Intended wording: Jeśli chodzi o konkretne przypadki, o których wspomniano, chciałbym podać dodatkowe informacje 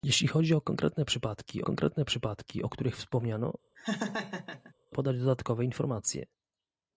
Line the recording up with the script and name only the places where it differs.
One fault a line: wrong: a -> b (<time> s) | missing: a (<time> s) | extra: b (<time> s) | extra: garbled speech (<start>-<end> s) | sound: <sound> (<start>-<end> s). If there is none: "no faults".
extra: konkretne przypadki (1.6 s)
missing: chciałbym (3.5 s)
sound: laugh (3.8-4.7 s)